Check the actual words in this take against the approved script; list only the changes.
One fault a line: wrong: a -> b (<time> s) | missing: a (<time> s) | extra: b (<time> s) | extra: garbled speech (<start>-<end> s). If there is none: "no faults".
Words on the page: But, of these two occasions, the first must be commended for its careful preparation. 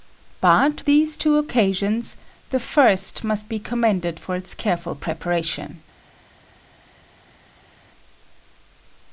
missing: of (0.8 s)